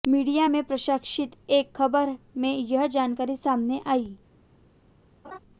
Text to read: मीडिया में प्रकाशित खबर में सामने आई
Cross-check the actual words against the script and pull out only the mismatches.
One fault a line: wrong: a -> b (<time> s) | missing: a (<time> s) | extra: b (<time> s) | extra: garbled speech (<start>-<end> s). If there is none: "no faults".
extra: एक (1.5 s)
extra: यह जानकारी (2.6 s)